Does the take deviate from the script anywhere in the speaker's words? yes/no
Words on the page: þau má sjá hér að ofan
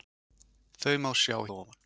yes